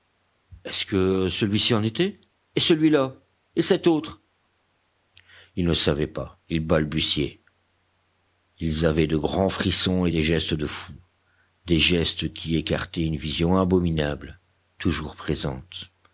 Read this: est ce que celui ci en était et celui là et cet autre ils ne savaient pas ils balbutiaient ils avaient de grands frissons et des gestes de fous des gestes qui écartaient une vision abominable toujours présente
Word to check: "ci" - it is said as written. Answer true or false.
true